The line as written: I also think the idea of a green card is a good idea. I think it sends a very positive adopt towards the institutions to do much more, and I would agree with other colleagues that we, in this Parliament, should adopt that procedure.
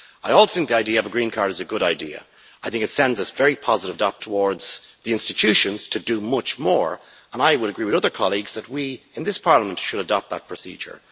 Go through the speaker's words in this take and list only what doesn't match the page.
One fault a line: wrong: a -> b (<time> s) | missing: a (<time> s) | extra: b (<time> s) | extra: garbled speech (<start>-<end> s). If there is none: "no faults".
no faults